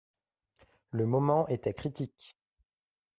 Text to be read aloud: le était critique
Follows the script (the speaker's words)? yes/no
no